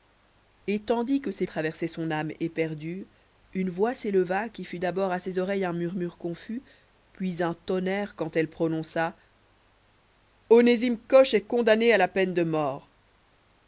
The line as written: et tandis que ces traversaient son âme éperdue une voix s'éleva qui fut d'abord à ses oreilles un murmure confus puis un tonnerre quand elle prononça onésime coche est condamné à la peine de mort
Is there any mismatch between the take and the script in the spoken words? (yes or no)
no